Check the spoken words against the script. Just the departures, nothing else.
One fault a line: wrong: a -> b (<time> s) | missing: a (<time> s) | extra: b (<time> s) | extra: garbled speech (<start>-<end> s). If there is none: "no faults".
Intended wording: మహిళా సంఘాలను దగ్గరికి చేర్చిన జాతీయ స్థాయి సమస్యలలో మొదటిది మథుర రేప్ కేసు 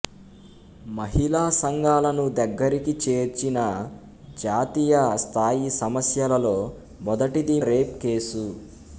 missing: మథుర (7.6 s)